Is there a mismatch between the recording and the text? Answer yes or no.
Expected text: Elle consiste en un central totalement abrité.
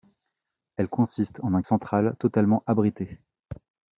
no